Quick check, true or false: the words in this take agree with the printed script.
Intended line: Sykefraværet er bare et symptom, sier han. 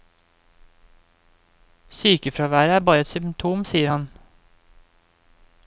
true